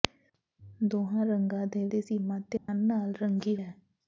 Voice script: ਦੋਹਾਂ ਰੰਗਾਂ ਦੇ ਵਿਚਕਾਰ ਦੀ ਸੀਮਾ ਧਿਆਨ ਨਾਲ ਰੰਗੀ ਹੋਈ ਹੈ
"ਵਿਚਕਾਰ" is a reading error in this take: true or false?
true